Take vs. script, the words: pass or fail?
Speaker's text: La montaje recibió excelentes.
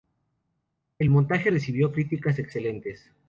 fail